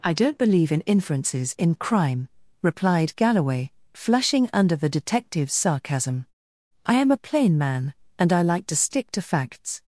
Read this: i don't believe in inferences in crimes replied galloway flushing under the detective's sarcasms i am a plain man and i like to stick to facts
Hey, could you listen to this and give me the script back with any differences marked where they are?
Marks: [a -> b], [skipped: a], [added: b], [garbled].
i don't believe in inferences in [crimes -> crime] replied galloway flushing under the detective's [sarcasms -> sarcasm] i am a plain man and i like to stick to facts